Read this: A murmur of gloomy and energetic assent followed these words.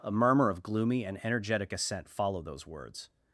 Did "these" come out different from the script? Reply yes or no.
yes